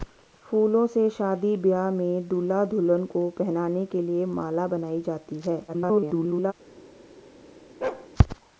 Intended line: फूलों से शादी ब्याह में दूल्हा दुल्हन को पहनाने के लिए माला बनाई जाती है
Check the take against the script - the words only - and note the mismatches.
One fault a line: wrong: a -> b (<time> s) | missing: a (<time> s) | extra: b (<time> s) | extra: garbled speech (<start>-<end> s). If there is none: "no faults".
extra: garbled speech (5.7-6.5 s)